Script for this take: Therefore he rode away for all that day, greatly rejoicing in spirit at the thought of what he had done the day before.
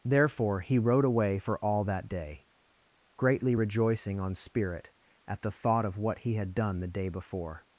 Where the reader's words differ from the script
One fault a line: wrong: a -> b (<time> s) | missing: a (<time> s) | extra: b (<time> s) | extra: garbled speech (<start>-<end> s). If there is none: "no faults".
wrong: in -> on (4.2 s)